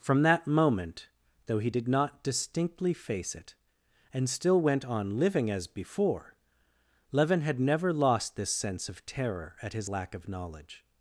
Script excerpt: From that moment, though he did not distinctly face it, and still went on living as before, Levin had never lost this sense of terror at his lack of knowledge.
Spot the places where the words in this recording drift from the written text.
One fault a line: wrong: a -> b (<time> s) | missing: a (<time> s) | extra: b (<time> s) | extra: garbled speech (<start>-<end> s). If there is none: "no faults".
no faults